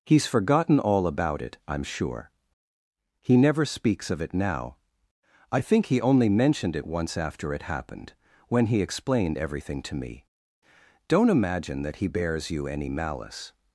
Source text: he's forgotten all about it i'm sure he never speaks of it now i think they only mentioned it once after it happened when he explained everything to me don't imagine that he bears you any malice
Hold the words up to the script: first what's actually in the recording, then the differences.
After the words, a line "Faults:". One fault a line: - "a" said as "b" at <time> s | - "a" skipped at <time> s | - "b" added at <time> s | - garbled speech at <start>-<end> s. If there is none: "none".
he's forgotten all about it i'm sure he never speaks of it now i think he only mentioned it once after it happened when he explained everything to me don't imagine that he bears you any malice
Faults:
- "they" said as "he" at 5.9 s